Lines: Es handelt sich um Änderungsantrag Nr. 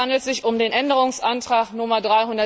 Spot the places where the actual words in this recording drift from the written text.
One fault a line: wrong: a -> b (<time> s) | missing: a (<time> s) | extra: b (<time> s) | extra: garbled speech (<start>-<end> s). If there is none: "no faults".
extra: den (0.6 s)